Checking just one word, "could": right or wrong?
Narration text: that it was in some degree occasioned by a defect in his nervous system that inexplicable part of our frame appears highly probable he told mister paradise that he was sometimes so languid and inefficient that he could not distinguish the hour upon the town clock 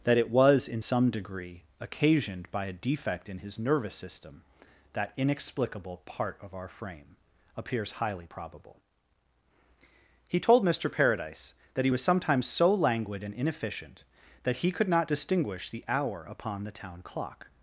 right